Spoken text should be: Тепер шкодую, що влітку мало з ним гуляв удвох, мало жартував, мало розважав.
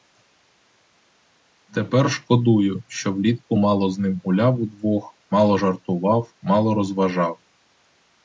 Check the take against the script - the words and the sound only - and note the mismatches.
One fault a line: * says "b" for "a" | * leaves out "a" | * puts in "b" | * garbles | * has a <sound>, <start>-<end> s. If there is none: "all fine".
all fine